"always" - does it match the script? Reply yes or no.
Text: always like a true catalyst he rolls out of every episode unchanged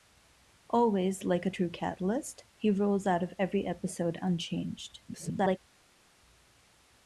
yes